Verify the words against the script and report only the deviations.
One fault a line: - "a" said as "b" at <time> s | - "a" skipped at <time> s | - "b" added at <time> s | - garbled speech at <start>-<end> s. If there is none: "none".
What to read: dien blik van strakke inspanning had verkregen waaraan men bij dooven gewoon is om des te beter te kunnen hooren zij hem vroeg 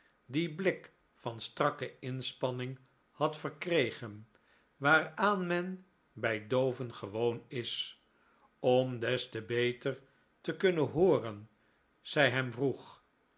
none